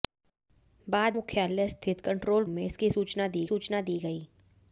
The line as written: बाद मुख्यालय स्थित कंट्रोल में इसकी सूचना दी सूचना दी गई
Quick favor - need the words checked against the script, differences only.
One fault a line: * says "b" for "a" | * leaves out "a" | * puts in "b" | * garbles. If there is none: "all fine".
all fine